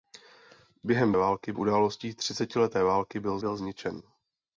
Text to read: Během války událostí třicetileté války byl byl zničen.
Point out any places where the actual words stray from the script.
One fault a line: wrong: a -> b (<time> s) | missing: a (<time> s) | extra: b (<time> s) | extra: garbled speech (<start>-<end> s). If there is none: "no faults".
no faults